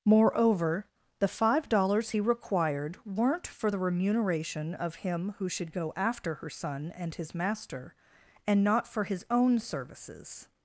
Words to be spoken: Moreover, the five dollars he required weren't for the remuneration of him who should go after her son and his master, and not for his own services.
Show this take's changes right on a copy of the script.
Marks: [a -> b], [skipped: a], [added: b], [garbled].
Moreover, the five dollars he required weren't for the remuneration of him who should go after her son and his master, and not for his own services.